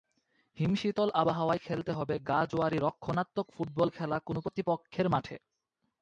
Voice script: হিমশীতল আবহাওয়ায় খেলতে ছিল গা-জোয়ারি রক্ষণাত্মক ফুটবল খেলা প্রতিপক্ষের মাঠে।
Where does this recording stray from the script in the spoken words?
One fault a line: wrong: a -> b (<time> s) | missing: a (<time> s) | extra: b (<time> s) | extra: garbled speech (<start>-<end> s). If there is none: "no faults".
wrong: ছিল -> হবে (1.9 s)
extra: কোনো (4.2 s)